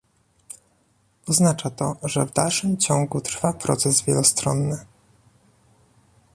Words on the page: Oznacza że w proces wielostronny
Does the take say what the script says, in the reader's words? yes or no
no